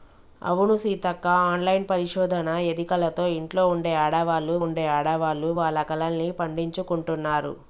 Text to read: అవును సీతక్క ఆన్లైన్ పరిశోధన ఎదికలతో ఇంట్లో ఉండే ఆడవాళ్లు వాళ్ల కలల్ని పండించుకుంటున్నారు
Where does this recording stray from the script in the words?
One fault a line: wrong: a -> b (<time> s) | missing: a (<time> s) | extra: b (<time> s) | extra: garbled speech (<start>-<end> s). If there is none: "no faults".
extra: ఉండే ఆడవాళ్లు (4.6 s)